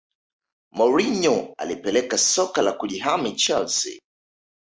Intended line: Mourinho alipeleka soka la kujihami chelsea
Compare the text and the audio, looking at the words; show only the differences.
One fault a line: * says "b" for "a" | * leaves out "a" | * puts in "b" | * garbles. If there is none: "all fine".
all fine